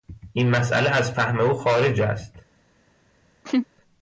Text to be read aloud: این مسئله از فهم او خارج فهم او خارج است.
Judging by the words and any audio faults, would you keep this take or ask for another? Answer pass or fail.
fail